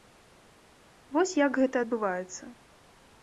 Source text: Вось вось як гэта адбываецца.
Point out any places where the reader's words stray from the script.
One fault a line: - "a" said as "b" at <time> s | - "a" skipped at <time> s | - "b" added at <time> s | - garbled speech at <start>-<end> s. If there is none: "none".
- "вось" skipped at 1.4 s